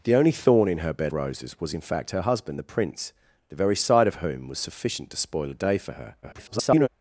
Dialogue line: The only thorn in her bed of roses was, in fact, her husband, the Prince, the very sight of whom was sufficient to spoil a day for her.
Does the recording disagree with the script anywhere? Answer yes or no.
yes